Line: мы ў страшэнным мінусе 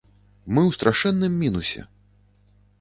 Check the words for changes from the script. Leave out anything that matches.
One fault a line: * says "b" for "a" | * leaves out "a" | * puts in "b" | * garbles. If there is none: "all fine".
all fine